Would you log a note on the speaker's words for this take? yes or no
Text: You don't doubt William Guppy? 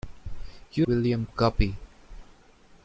yes